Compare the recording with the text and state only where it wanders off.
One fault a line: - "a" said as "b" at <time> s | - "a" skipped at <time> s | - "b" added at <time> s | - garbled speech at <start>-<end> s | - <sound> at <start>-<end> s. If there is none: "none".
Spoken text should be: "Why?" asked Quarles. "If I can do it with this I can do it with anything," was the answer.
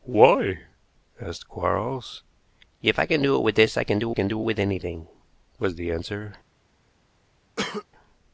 - "can do" added at 4.1 s
- cough at 7.6-7.9 s